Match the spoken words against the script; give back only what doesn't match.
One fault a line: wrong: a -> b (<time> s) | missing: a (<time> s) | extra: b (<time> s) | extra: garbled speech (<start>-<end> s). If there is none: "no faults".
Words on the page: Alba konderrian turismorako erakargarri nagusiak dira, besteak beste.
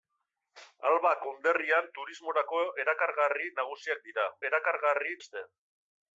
wrong: besteak -> erakargarri (4.5 s)